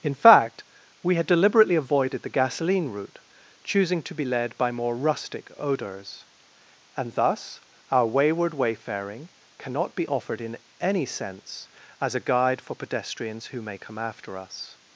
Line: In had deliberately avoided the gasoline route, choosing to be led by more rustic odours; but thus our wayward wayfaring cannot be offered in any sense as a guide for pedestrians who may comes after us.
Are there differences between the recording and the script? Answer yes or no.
yes